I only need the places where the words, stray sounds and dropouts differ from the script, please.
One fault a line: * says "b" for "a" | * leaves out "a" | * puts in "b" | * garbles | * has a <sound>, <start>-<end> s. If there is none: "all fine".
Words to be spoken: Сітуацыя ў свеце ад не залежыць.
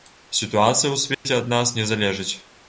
* has a dropout, 1.1-1.3 s
* puts in "нас"